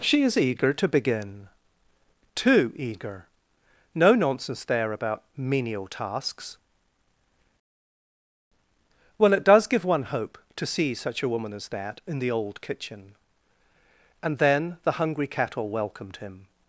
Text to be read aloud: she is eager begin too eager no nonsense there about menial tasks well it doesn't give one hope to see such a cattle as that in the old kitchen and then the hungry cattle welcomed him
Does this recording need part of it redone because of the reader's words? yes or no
yes